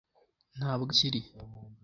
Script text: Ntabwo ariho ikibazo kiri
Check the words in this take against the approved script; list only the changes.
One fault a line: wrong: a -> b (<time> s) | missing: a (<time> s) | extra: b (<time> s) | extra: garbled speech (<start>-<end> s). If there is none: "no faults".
missing: ariho ikibazo (0.9 s)